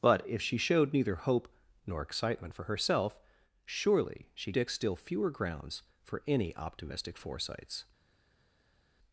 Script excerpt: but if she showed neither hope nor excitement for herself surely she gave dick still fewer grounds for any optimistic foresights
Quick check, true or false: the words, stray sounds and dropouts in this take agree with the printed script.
false